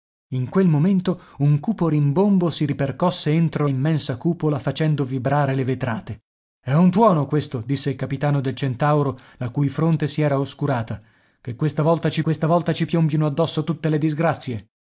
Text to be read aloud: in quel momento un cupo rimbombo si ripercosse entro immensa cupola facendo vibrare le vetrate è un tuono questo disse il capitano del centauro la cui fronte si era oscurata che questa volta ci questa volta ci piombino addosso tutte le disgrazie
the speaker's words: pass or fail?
pass